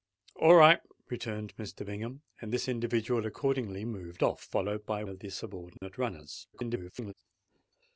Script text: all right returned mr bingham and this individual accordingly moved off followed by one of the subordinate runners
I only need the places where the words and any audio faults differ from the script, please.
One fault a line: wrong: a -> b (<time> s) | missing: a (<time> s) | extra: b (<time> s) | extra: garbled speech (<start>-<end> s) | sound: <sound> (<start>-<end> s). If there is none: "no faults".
missing: one (5.0 s)
sound: dropout (5.8-5.8 s)
extra: garbled speech (6.5-7.1 s)